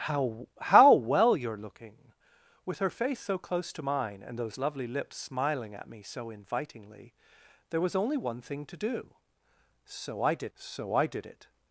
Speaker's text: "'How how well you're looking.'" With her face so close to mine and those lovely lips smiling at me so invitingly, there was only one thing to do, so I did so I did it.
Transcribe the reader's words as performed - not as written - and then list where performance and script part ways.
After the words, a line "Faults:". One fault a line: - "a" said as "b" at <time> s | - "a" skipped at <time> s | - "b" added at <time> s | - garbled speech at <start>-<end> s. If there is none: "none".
"'How how well you're looking.'" With her face so close to mine and those lovely lips smiling at me so invitingly, there was only one thing to do, so I did so I did it.
Faults:
none